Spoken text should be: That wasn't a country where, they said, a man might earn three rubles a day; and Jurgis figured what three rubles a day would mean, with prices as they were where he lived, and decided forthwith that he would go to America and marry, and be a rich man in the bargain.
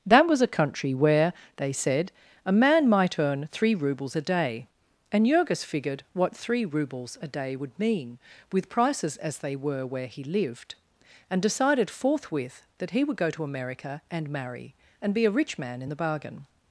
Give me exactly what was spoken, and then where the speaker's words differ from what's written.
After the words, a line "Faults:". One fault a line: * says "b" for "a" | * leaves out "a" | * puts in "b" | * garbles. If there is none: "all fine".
That was a country where, they said, a man might earn three rubles a day; and Jurgis figured what three rubles a day would mean, with prices as they were where he lived, and decided forthwith that he would go to America and marry, and be a rich man in the bargain.
Faults:
* says "was" for "wasn't"